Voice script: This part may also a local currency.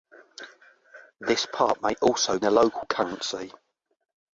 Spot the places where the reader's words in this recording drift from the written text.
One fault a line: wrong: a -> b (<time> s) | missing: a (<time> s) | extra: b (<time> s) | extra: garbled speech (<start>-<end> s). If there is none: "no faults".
no faults